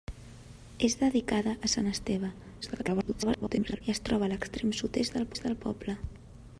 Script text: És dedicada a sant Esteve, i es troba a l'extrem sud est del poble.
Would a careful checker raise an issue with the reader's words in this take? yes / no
yes